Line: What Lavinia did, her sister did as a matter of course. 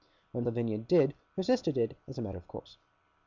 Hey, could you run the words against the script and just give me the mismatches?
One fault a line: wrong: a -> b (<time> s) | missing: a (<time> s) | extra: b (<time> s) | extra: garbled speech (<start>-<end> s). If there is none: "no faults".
no faults